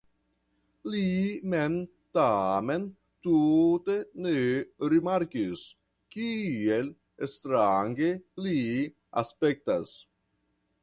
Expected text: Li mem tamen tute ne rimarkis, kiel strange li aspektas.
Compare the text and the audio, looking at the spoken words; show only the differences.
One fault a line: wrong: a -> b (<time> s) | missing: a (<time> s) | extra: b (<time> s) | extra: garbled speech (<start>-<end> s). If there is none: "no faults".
no faults